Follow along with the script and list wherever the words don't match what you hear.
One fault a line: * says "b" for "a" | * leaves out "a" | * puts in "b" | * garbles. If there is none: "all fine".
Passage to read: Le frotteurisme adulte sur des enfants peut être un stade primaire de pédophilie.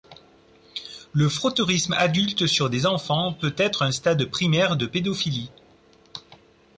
all fine